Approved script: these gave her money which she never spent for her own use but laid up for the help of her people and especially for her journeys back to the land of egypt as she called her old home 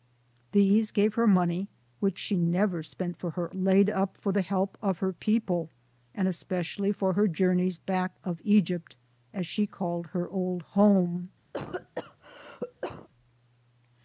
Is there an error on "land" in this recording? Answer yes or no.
yes